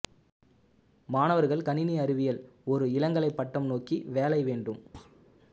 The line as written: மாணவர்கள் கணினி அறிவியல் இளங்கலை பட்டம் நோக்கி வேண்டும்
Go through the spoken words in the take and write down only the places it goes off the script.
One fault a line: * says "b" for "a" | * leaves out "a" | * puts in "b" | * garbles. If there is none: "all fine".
* puts in "ஒரு"
* puts in "வேலை"